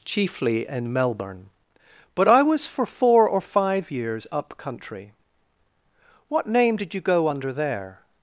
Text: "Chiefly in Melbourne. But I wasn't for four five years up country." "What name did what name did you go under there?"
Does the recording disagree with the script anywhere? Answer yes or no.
yes